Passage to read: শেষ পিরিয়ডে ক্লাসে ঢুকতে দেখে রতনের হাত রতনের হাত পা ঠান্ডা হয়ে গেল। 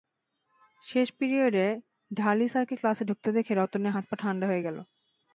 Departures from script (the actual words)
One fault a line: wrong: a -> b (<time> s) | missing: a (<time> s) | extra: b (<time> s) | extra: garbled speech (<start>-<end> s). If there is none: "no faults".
extra: ঢালি স্যারকে (2.1 s)
missing: রতনের হাত (4.0 s)